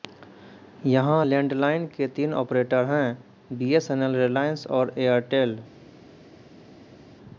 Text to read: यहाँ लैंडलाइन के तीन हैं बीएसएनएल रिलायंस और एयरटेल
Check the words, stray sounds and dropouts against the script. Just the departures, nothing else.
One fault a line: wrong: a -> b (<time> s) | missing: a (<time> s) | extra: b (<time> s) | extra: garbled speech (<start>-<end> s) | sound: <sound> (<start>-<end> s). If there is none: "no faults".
extra: ऑपरेटर (2.3 s)